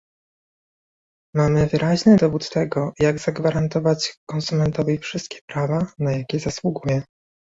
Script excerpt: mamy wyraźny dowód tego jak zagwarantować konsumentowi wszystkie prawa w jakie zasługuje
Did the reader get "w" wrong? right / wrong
wrong